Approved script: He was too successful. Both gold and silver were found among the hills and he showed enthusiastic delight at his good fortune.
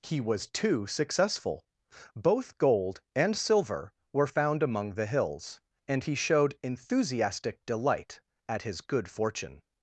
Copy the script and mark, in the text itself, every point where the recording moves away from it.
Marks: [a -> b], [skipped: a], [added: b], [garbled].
He was too successful. Both gold and silver were found among the hills and he showed enthusiastic delight at his good fortune.